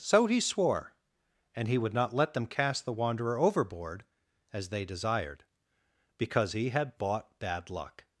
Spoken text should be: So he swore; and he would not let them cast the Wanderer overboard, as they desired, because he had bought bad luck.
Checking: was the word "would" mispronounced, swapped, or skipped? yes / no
no